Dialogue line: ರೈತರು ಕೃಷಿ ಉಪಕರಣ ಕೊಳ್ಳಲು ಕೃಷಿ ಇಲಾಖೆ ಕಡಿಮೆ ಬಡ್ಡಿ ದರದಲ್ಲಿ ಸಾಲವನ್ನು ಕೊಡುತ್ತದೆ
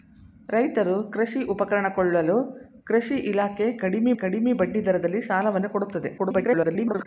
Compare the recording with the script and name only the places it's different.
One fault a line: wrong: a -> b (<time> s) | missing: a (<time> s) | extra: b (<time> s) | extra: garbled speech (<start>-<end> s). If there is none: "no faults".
extra: ಕಡಿಮೆ (4.2 s)
extra: garbled speech (6.2-7.1 s)